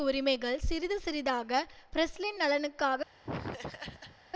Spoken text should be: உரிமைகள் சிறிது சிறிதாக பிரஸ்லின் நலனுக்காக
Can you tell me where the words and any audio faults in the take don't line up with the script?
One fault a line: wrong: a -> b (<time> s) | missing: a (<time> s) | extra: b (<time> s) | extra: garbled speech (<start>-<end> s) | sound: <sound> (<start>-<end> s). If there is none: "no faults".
sound: laugh (3.2-4.2 s)